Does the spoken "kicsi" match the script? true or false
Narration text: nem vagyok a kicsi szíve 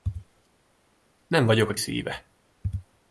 false